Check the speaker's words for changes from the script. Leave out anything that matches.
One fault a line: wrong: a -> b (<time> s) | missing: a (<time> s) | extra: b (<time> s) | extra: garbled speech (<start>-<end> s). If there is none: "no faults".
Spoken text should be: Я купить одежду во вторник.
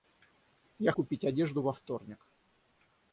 no faults